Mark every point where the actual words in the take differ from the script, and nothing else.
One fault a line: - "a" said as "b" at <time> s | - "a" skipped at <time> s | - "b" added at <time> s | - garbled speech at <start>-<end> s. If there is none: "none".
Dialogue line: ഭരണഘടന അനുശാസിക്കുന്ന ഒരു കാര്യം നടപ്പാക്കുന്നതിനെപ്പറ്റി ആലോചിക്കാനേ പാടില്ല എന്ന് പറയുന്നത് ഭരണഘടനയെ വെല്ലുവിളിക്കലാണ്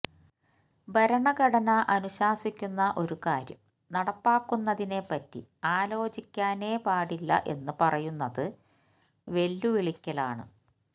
- "ഭരണഘടനയെ" skipped at 8.4 s